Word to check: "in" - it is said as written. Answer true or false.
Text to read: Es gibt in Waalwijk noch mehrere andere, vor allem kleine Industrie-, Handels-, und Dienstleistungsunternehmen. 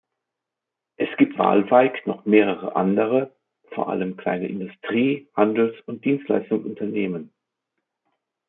false